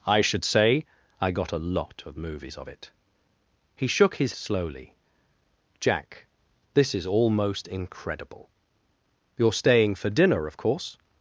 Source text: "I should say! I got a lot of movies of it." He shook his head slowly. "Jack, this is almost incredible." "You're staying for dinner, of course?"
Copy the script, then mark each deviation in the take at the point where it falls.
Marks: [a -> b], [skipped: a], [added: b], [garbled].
"I should say! I got a lot of movies of it." He shook his [skipped: head] slowly. "Jack, this is almost incredible." "You're staying for dinner, of course?"